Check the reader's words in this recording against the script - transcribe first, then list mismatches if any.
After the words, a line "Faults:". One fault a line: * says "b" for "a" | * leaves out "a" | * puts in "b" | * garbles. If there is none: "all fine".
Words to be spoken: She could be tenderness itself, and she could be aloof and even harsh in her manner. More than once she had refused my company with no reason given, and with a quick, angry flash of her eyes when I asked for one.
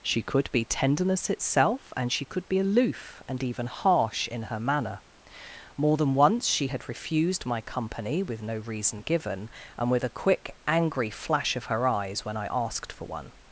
She could be tenderness itself, and she could be aloof and even harsh in her manner. More than once she had refused my company with no reason given, and with a quick, angry flash of her eyes when I asked for one.
Faults:
all fine